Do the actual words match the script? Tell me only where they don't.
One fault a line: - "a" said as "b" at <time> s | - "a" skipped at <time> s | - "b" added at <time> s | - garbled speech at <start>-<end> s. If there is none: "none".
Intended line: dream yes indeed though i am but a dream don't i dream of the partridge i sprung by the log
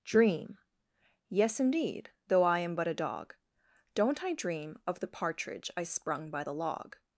- "dream" said as "dog" at 2.9 s